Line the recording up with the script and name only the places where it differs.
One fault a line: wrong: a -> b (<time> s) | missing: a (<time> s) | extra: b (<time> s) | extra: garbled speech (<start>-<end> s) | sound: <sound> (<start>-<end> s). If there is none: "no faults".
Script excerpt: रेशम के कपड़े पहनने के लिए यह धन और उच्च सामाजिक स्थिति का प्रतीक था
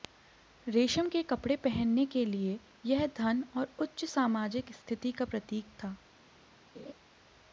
sound: laugh (6.8-6.9 s)